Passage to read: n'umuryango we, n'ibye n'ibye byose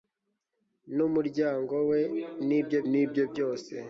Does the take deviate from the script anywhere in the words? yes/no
no